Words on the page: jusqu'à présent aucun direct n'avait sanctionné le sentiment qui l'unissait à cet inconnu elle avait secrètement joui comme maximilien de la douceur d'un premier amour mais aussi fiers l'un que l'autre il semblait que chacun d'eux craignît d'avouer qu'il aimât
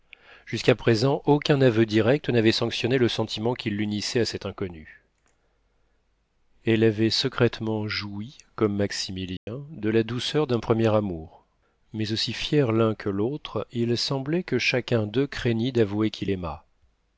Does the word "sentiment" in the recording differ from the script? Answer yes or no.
no